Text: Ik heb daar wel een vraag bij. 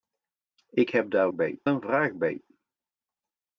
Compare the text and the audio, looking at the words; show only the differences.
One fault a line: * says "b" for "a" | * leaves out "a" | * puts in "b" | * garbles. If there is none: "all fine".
* says "bij" for "wel"